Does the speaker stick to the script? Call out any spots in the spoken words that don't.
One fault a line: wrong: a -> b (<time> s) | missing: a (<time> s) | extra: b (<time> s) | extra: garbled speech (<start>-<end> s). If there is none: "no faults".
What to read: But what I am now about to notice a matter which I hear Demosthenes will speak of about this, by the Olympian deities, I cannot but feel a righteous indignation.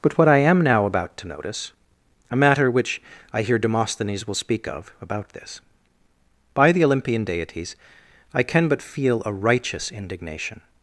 wrong: cannot -> can (8.4 s)